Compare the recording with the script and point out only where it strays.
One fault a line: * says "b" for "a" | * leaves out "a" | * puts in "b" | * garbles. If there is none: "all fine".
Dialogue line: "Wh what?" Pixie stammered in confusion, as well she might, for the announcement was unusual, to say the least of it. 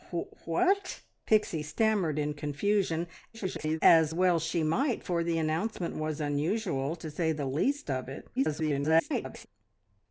* garbles
* garbles